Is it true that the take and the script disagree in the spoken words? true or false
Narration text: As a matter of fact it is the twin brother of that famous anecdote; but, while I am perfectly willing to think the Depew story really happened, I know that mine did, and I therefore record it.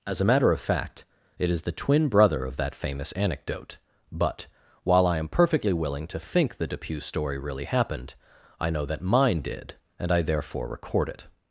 false